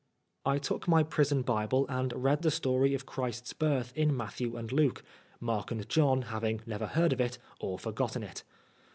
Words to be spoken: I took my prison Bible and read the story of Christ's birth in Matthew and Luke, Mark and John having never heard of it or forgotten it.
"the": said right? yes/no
yes